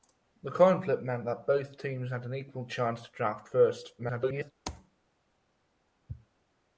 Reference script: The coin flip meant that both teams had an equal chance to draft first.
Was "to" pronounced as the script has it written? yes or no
yes